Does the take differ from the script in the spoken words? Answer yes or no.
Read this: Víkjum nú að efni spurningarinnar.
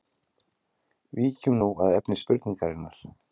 no